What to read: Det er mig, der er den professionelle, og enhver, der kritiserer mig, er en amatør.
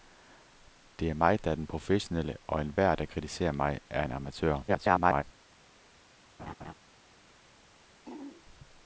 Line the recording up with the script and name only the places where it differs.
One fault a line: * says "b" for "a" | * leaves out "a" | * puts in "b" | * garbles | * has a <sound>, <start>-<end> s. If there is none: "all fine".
* garbles
* has a laugh, 6.4-6.7 s
* has a throat clearing, 8.1-8.4 s